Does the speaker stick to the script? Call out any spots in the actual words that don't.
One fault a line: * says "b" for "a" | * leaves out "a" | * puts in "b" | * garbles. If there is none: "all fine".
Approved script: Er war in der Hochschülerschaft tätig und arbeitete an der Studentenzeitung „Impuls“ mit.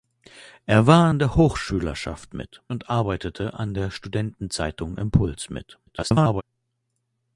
* says "mit" for "tätig"
* garbles